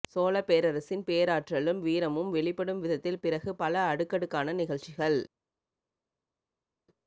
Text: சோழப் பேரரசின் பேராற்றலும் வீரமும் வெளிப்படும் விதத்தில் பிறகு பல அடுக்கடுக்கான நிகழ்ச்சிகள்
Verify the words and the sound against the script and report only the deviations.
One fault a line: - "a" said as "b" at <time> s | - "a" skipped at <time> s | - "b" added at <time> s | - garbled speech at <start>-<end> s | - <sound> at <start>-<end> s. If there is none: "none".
none